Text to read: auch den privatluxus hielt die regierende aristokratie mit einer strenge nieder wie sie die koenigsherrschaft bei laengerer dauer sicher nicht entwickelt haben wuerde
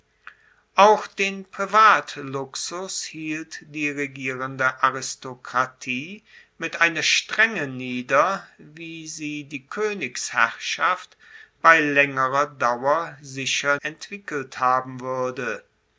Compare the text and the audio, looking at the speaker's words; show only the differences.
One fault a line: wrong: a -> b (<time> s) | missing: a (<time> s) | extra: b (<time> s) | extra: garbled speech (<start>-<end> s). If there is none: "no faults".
missing: nicht (13.8 s)